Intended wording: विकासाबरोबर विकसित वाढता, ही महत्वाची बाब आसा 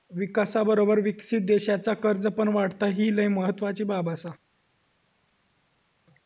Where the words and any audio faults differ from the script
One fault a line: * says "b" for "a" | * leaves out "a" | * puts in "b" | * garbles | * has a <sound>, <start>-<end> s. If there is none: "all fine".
* puts in "देशाचा कर्ज पण"
* puts in "लय"